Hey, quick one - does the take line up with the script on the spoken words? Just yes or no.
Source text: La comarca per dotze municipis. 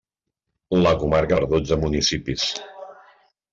yes